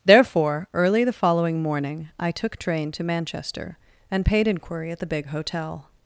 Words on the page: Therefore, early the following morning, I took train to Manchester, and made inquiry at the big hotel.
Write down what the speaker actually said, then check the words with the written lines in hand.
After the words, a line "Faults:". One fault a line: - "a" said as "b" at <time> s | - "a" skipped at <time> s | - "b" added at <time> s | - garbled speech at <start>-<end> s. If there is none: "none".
Therefore, early the following morning, I took train to Manchester, and paid inquiry at the big hotel.
Faults:
- "made" said as "paid" at 4.2 s